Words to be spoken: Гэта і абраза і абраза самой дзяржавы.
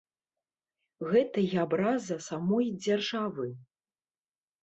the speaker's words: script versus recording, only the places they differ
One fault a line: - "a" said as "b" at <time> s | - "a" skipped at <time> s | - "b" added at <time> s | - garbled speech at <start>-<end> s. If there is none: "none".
- "і абраза" skipped at 2.2 s